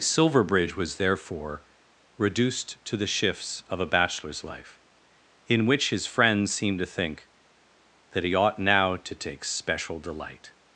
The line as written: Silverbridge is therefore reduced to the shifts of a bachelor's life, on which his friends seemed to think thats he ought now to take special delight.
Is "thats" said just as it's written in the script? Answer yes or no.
no